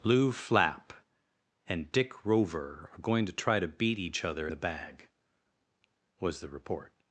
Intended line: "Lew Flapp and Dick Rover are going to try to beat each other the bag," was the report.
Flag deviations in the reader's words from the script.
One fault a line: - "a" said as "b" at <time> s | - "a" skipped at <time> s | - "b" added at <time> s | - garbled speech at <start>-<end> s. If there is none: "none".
none